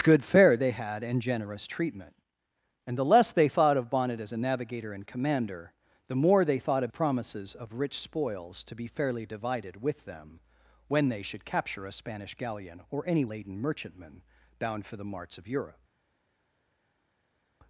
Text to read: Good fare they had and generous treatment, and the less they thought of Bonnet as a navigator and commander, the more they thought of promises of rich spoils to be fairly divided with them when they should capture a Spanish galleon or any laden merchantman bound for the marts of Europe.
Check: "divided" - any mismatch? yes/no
no